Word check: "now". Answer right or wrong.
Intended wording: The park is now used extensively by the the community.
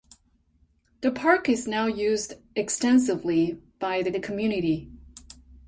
right